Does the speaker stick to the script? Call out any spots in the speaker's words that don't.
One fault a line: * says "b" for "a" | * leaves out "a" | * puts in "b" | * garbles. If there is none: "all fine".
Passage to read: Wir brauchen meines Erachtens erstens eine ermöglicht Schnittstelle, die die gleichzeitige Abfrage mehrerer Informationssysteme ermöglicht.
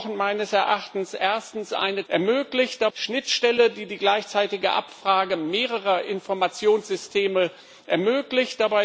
all fine